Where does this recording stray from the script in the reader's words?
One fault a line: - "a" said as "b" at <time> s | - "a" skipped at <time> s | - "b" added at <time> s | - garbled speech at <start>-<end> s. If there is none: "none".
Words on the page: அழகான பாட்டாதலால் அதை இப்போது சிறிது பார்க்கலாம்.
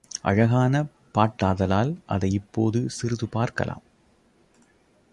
none